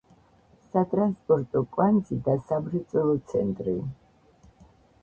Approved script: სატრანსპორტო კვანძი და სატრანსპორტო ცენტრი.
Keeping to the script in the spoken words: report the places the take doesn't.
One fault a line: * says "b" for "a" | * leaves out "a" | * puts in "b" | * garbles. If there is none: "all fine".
* says "სამრეწველო" for "სატრანსპორტო"